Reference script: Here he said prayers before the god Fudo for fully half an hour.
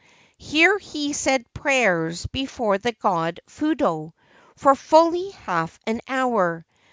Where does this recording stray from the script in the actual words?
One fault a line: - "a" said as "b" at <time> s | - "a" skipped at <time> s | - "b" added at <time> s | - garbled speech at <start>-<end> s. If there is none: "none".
none